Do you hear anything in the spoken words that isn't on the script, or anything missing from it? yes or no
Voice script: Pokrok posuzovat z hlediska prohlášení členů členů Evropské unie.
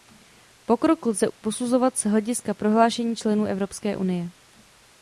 yes